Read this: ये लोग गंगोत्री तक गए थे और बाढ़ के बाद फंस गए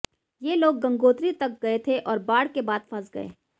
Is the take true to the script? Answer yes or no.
yes